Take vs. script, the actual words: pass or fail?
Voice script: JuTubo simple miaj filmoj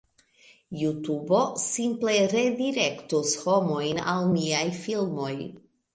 fail